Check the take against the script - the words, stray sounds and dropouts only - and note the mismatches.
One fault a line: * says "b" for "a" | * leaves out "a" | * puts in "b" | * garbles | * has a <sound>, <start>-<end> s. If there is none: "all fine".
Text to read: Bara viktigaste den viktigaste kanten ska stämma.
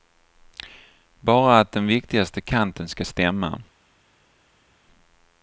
* says "att" for "viktigaste"